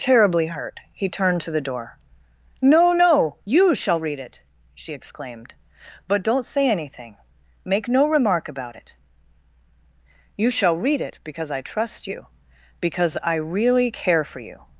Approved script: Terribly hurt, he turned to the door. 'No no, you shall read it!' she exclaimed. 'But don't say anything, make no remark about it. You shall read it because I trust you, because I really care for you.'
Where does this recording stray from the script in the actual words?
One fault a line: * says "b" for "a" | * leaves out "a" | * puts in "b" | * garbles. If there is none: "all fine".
all fine